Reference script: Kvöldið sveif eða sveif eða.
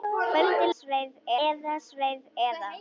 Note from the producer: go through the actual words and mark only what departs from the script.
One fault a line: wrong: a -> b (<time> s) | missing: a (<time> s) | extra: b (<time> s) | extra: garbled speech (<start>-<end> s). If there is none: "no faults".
no faults